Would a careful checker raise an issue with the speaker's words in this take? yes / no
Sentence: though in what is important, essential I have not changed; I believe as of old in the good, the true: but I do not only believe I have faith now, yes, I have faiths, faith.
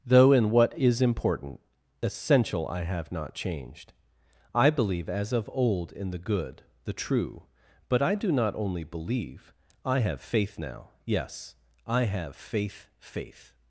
yes